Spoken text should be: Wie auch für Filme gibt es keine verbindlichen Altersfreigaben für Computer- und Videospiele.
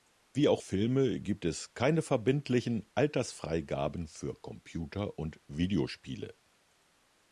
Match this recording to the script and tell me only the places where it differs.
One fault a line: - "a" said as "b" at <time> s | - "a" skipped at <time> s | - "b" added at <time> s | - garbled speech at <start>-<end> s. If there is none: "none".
- "für" skipped at 0.6 s